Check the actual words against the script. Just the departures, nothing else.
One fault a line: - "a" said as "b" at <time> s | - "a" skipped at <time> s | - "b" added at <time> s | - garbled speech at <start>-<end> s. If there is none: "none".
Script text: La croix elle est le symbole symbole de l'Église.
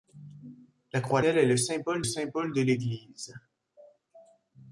none